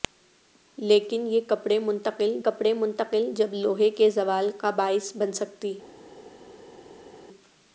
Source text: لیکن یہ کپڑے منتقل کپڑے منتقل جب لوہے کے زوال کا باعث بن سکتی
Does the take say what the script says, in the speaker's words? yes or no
yes